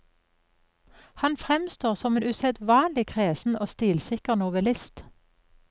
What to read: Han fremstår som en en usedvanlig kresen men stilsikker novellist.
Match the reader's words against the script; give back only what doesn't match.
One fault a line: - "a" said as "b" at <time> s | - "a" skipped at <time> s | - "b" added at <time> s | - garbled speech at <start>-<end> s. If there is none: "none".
- "en" skipped at 2.2 s
- "men" said as "og" at 3.6 s